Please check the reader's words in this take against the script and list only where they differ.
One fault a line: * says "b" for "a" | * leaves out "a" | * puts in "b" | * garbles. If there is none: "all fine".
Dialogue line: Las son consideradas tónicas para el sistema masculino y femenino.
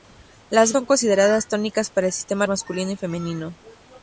all fine